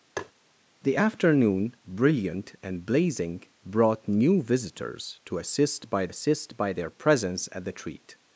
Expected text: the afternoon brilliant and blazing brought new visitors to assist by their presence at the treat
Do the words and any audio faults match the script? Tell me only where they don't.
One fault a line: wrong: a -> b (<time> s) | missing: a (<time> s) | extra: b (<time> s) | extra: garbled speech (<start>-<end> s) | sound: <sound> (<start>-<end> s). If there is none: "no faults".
sound: tap (0.2-0.3 s)
extra: assist by (6.1 s)